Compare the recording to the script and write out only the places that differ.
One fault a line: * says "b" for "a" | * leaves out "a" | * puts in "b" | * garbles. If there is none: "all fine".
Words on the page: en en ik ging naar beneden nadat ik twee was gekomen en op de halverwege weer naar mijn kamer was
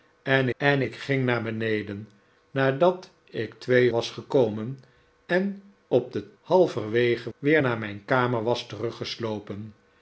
all fine